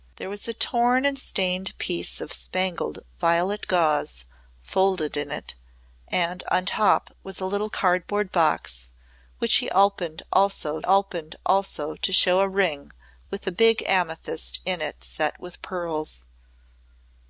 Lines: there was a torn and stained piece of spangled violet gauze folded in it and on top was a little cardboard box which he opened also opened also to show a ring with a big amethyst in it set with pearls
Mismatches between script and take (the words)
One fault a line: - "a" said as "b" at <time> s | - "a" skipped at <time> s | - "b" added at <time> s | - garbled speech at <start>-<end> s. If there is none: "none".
none